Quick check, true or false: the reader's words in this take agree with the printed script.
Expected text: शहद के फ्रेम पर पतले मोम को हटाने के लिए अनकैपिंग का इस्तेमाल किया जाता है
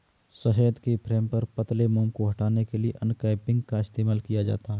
true